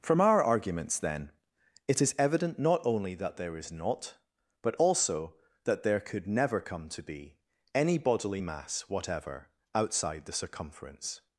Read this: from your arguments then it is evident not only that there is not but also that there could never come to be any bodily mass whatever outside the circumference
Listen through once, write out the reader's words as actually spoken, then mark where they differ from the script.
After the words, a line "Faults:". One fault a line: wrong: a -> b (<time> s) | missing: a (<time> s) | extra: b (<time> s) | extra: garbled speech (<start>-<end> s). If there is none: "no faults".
from our arguments then it is evident not only that there is not but also that there could never come to be any bodily mass whatever outside the circumference
Faults:
wrong: your -> our (0.2 s)